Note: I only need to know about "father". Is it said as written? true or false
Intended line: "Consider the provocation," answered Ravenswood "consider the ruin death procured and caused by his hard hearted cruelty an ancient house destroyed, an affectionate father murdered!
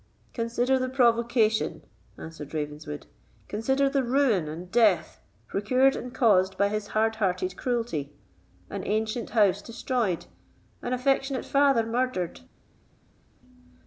true